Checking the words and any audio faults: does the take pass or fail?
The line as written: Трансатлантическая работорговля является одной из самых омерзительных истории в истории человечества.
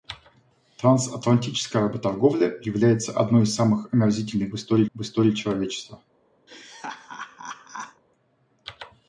fail